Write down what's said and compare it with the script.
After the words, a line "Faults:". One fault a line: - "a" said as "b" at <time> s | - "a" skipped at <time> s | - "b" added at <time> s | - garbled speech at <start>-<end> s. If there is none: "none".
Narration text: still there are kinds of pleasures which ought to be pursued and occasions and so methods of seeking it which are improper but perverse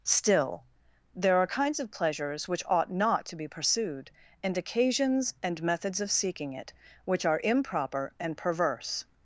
still there are kinds of pleasures which ought not to be pursued and occasions and methods of seeking it which are improper and perverse
Faults:
- "not" added at 2.9 s
- "so" skipped at 5.6 s
- "but" said as "and" at 8.2 s